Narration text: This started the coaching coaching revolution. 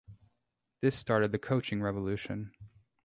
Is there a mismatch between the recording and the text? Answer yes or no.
yes